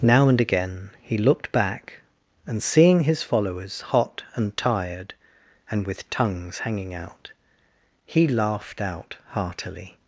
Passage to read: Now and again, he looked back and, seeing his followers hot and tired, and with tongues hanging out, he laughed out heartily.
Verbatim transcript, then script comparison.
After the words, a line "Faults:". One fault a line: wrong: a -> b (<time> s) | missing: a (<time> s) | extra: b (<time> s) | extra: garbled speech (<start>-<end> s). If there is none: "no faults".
Now and again, he looked back and, seeing his followers hot and tired, and with tongues hanging out, he laughed out heartily.
Faults:
no faults